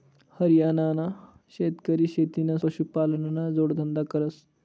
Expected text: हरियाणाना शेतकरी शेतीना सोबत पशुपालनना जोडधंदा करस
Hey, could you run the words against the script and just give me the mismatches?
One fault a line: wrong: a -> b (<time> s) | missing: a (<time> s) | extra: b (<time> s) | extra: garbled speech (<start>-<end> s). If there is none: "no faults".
missing: सोबत (2.6 s)